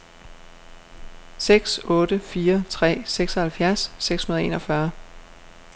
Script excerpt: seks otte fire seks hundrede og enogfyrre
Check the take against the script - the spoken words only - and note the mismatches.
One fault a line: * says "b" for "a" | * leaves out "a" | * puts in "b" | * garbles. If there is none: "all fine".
* puts in "tre seksoghalvfjerds"